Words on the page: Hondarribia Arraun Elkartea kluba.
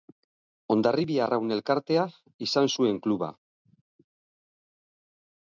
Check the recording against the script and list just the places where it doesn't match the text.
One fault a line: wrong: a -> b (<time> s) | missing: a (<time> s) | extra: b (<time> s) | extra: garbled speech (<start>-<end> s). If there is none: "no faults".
extra: izan zuen (2.5 s)